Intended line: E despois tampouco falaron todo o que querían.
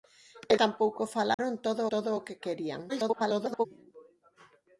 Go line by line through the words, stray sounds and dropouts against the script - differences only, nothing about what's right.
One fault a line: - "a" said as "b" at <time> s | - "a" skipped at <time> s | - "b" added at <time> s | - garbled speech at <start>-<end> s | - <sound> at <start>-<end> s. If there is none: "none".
- "despois" skipped at 0.5 s
- dropout at 1.3-1.4 s
- "todo" added at 1.9 s
- garbled speech at 2.9-3.7 s